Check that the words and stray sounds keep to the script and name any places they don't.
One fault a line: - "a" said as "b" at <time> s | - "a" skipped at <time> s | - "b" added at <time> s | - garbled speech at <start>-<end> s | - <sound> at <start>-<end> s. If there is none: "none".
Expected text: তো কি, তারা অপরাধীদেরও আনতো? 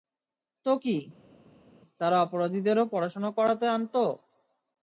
- "পড়াশোনা করাতে" added at 2.9 s